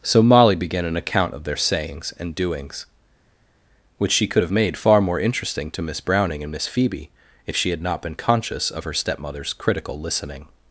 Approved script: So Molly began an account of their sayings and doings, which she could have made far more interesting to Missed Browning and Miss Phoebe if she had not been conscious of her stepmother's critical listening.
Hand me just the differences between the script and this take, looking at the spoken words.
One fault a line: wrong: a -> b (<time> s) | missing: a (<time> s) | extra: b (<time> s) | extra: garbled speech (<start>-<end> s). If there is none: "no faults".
wrong: Missed -> Miss (5.8 s)